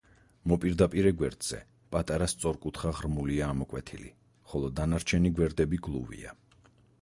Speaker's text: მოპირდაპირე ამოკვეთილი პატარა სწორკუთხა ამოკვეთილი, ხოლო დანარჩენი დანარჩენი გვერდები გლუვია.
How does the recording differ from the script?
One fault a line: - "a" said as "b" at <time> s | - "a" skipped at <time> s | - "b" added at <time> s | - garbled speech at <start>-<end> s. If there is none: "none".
- "ამოკვეთილი" said as "გვერდზე" at 1.2 s
- "ღრმულია" added at 3.0 s
- "დანარჩენი" skipped at 5.3 s